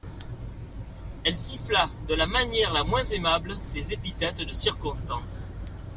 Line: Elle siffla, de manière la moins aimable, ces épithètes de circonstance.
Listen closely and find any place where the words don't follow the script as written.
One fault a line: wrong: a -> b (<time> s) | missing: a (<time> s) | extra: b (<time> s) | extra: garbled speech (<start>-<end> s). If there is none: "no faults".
extra: la (2.1 s)